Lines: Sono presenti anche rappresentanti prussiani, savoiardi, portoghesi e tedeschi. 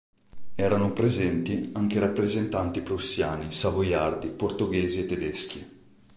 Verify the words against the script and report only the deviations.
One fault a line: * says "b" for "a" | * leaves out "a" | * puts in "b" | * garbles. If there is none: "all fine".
* says "Erano" for "Sono"